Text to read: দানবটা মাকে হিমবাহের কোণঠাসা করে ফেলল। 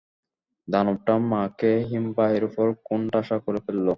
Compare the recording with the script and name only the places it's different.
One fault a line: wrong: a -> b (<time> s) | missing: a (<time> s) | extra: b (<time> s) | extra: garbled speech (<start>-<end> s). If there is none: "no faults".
extra: উপর (2.5 s)